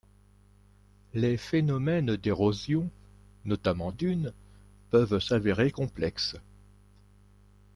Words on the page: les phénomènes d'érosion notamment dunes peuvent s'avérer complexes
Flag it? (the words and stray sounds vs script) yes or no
no